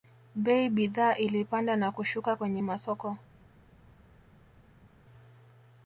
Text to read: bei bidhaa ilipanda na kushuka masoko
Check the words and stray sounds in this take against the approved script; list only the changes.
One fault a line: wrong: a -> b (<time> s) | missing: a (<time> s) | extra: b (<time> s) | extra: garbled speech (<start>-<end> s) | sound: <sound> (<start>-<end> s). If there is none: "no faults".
extra: kwenye (2.3 s)